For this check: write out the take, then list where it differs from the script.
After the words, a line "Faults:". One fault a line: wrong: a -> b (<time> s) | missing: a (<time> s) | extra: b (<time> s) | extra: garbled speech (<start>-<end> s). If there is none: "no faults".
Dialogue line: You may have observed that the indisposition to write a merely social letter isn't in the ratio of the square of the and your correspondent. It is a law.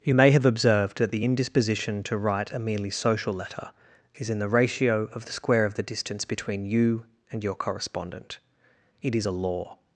You may have observed that the indisposition to write a merely social letter is in the ratio of the square of the distance between you and your correspondent. It is a law.
Faults:
wrong: isn't -> is (4.1 s)
extra: distance between you (5.8 s)